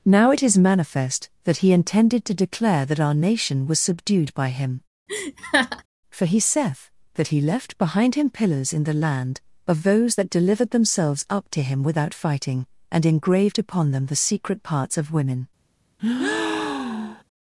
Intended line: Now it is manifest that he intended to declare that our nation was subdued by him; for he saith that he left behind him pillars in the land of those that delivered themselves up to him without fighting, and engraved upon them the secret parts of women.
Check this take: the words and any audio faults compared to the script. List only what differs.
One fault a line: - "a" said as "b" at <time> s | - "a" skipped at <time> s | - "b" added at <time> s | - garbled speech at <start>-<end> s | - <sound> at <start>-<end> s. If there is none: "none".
- laugh at 5.1-5.8 s
- breath at 16.0-17.2 s